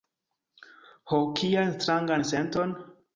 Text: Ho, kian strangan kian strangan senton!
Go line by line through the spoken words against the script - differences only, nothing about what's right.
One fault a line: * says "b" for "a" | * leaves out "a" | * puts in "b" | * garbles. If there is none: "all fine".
* leaves out "kian strangan"